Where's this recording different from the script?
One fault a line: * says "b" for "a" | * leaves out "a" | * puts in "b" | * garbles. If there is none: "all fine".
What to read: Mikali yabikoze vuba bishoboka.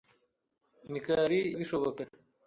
* leaves out "yabikoze vuba"